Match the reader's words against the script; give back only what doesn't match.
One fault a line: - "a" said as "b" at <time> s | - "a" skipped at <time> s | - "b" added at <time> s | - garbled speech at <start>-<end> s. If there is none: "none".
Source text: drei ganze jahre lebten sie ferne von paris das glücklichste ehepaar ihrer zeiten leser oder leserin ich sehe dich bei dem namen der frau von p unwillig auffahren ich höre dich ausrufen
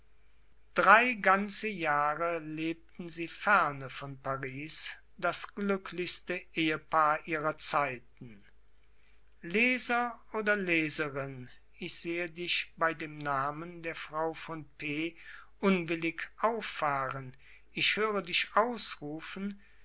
none